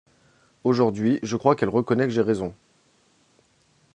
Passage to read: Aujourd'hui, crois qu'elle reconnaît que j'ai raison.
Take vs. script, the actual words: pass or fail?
fail